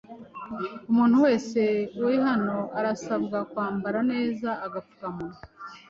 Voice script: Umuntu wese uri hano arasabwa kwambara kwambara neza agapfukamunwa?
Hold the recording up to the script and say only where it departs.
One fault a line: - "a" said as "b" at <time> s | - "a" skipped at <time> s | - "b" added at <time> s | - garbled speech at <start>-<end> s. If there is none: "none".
- "kwambara" skipped at 4.0 s